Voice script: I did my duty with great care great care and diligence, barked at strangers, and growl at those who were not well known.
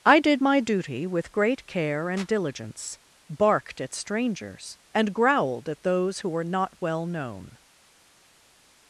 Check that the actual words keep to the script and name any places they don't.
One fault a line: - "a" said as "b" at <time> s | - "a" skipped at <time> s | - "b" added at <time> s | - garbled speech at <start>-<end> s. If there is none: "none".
- "great care" skipped at 2.1 s
- "growl" said as "growled" at 5.1 s